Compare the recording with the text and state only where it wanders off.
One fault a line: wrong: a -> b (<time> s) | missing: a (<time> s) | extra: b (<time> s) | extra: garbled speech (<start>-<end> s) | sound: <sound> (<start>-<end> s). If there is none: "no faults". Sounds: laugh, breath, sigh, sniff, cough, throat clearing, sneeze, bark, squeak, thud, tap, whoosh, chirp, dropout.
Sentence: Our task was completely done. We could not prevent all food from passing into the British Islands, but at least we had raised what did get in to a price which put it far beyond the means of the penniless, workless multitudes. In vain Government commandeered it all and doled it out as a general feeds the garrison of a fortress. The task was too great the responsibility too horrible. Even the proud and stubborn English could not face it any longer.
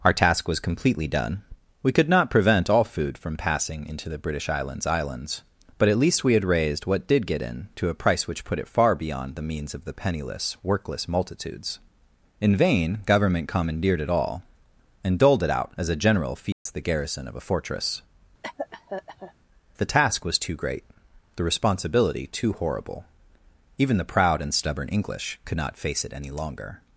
extra: Islands (4.9 s)
sound: dropout (16.5-16.7 s)
sound: cough (18.4-19.3 s)